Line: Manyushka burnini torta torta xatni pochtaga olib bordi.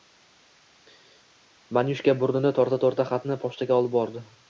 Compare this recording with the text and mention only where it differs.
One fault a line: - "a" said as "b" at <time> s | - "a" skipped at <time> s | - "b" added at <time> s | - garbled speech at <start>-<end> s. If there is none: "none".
none